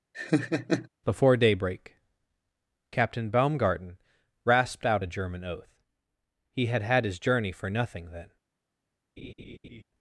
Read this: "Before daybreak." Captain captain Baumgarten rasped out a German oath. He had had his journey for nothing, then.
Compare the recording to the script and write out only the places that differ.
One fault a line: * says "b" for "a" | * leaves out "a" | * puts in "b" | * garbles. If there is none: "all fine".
* leaves out "captain"